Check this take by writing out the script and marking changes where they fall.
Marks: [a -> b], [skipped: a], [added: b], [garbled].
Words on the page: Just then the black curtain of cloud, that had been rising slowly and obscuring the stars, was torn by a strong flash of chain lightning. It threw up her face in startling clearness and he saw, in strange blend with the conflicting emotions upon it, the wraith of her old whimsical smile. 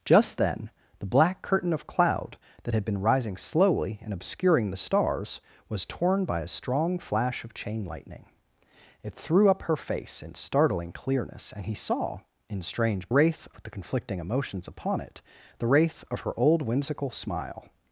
Just then the black curtain of cloud, that had been rising slowly and obscuring the stars, was torn by a strong flash of chain lightning. It threw up her face in startling clearness and he saw, in strange [blend -> wraith] with the conflicting emotions upon it, the wraith of her old whimsical smile.